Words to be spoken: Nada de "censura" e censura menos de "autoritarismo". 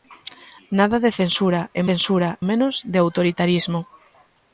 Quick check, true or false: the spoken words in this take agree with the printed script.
true